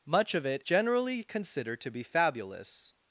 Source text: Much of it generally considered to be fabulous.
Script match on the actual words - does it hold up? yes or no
yes